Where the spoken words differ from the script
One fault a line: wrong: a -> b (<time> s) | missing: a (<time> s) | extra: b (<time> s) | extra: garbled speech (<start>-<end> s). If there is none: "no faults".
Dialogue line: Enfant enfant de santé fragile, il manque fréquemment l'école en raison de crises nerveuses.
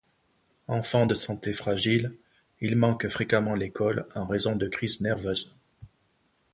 missing: enfant (1.1 s)